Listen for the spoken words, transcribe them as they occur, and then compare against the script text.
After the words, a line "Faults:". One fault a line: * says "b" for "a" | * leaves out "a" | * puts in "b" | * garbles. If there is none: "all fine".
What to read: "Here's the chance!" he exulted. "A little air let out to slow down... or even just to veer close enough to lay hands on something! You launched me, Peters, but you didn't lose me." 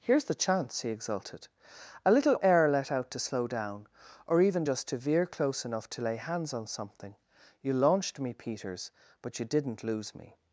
"Here's the chance!" he exulted. "A little air let out to slow down... or even just to veer close enough to lay hands on something! You launched me, Peters, but you didn't lose me."
Faults:
all fine